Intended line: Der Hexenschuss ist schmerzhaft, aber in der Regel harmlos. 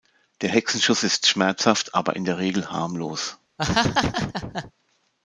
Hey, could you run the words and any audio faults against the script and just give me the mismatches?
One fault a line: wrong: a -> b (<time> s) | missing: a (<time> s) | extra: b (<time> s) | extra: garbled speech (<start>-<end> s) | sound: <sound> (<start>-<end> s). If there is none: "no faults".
sound: laugh (3.6-4.7 s)